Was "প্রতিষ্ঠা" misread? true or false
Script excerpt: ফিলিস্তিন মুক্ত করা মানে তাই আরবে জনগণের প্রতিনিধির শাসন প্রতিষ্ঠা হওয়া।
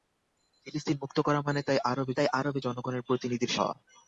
true